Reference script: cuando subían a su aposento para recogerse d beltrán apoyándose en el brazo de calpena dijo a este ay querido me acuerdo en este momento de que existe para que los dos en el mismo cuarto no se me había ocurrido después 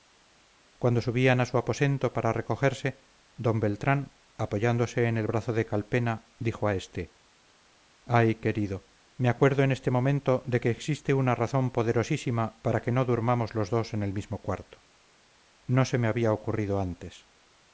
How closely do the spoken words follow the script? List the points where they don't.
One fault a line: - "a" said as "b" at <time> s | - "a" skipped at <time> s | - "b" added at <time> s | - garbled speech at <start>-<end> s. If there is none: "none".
- "una razón poderosísima" added at 11.1 s
- "no durmamos" added at 12.9 s
- "después" said as "antes" at 16.8 s